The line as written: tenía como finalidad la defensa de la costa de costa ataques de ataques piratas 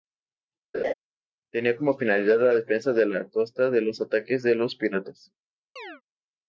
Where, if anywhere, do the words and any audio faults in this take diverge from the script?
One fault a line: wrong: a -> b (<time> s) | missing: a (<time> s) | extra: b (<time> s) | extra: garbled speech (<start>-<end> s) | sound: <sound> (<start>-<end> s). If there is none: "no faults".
sound: laugh (0.7-0.9 s)
wrong: costa -> los (3.8 s)
wrong: ataques -> los (4.5 s)
sound: chirp (5.8-6.0 s)